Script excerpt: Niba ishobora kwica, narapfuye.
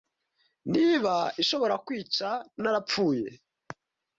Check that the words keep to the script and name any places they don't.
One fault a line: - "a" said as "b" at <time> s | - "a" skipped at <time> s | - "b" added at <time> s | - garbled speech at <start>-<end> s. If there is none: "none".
none